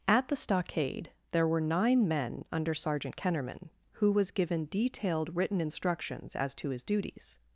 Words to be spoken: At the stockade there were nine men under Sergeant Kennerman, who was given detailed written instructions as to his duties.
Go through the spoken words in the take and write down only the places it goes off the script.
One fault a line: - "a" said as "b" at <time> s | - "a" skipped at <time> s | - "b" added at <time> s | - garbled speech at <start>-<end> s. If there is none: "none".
none